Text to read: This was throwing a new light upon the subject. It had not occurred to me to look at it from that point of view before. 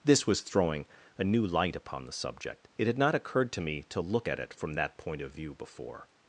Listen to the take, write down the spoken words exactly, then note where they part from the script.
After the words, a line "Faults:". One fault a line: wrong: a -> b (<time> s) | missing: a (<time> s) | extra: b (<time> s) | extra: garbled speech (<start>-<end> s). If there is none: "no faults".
This was throwing a new light upon the subject. It had not occurred to me to look at it from that point of view before.
Faults:
no faults